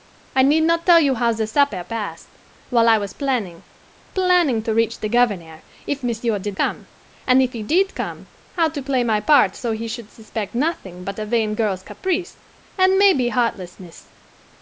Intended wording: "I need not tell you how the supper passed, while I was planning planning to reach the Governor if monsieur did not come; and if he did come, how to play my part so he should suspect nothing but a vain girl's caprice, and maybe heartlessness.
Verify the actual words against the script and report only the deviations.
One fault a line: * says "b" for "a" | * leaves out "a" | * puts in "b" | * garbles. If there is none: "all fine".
* leaves out "not"